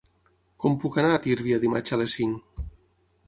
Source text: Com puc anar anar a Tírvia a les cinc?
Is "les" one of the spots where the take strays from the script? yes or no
no